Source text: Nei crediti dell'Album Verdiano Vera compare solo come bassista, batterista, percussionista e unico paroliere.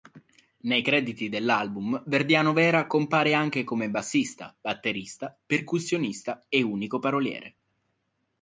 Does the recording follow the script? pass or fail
fail